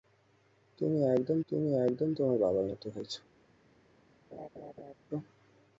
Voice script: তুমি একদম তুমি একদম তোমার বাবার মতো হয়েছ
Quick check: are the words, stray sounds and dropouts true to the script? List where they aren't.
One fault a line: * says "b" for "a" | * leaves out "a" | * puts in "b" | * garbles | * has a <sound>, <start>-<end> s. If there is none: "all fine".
* has a laugh, 4.3-4.9 s